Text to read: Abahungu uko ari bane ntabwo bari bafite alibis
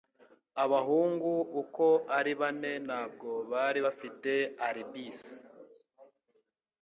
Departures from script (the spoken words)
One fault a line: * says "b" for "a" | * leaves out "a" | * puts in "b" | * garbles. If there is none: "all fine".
all fine